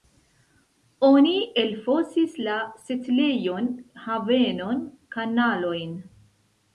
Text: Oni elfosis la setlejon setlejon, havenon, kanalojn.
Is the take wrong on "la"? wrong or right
right